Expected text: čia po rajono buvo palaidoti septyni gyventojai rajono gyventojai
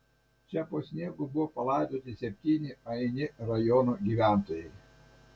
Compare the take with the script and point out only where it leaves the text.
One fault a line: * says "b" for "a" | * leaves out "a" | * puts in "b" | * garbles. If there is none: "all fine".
* says "sniegu" for "rajono"
* says "aini" for "gyventojai"